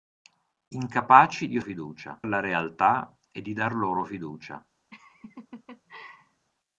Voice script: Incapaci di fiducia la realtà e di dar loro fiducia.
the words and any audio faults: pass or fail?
fail